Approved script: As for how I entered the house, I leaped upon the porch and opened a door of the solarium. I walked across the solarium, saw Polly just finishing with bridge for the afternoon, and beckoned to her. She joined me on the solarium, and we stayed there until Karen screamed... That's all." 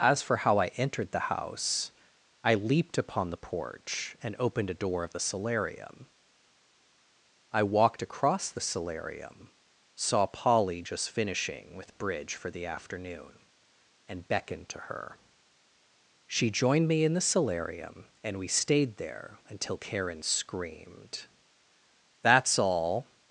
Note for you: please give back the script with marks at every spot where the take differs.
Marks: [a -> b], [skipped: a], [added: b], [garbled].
As for how I entered the house, I leaped upon the porch and opened a door of the solarium. I walked across the solarium, saw Polly just finishing with bridge for the afternoon, and beckoned to her. She joined me [on -> in] the solarium, and we stayed there until Karen screamed... That's all."